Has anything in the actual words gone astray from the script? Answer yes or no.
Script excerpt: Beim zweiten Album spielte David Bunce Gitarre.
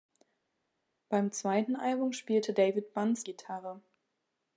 no